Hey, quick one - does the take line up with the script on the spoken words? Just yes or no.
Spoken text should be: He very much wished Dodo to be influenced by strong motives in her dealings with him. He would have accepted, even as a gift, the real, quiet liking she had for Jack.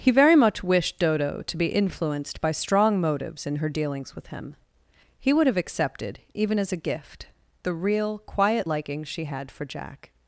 yes